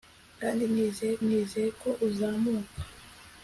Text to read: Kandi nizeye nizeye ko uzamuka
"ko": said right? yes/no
yes